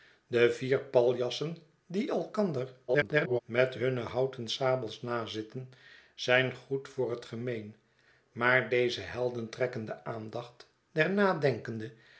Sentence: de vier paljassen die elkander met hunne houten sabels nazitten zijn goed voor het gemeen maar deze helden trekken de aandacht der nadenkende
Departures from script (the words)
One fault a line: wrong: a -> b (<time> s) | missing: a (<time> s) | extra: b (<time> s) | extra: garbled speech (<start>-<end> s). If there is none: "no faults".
extra: garbled speech (2.9-3.4 s)